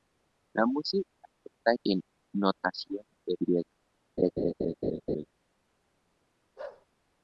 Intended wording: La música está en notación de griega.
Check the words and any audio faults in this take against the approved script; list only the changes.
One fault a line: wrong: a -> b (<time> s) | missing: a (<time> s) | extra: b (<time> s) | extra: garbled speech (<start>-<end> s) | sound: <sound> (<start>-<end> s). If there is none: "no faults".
sound: laugh (4.2-5.3 s)
sound: bark (6.6-6.9 s)